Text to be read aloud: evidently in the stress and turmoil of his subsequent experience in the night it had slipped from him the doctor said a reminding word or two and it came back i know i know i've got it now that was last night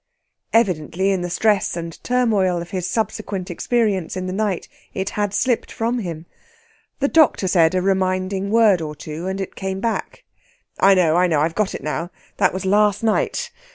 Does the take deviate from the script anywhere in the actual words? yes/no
no